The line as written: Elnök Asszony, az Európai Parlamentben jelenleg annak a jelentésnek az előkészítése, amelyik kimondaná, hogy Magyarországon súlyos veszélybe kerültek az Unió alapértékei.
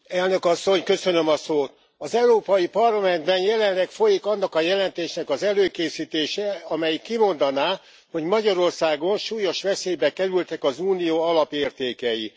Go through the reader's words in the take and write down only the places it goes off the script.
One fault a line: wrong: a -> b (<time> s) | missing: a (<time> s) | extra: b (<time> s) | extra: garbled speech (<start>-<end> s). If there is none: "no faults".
extra: folyik (3.9 s)